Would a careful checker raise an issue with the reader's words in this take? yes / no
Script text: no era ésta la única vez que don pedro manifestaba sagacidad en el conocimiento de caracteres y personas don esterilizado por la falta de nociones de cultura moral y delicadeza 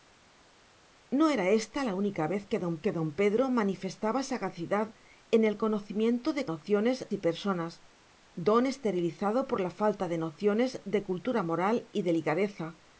yes